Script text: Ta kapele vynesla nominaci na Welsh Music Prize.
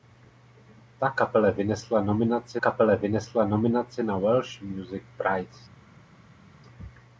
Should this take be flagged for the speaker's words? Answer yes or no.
yes